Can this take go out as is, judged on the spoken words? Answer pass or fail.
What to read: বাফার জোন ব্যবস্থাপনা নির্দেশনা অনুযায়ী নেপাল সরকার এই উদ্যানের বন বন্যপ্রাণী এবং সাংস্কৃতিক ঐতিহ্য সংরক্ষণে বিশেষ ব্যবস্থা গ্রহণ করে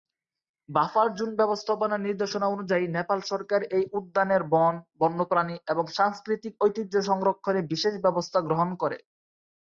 pass